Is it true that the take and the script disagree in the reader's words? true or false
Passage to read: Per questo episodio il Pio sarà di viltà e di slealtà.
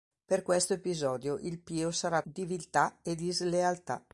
false